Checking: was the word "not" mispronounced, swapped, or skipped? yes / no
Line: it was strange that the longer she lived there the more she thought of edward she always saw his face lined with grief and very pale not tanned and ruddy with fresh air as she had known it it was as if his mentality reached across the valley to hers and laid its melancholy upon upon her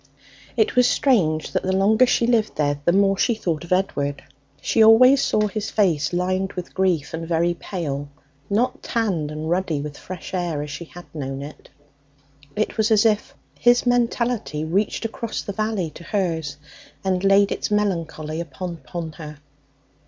no